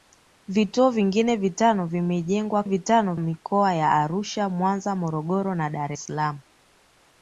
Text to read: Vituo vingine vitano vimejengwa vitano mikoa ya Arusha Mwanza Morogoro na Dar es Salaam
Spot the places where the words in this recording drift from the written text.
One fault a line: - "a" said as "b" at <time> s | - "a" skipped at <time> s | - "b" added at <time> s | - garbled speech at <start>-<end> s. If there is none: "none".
none